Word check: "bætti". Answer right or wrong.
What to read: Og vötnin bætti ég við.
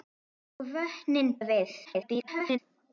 wrong